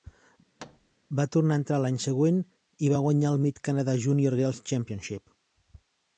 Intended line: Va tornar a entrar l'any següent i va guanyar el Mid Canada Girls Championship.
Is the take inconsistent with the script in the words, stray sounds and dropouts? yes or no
yes